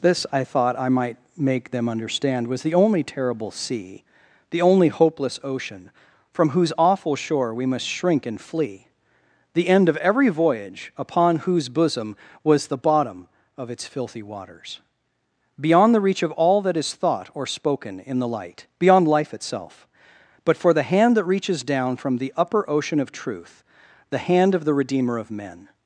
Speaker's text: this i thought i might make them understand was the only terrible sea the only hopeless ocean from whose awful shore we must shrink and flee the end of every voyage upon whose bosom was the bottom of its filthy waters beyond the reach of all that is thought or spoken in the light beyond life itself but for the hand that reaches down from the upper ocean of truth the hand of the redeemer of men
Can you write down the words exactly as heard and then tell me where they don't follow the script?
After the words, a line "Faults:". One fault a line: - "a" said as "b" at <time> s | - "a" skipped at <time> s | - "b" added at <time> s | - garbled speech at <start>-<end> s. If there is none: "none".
this i thought i might make them understand was the only terrible sea the only hopeless ocean from whose awful shore we must shrink and flee the end of every voyage upon whose bosom was the bottom of its filthy waters beyond the reach of all that is thought or spoken in the light beyond life itself but for the hand that reaches down from the upper ocean of truth the hand of the redeemer of men
Faults:
none